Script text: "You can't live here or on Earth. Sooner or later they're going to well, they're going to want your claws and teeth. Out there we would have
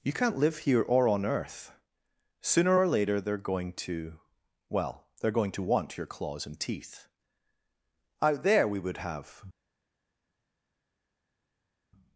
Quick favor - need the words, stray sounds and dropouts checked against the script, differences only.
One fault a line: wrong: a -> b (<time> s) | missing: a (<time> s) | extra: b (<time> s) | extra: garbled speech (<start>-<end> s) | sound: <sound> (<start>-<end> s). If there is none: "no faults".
no faults